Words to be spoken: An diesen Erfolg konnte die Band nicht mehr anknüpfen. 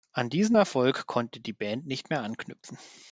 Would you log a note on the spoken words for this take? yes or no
no